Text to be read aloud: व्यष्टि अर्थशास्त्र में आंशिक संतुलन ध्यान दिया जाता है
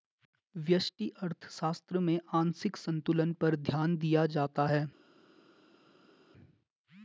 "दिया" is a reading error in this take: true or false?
false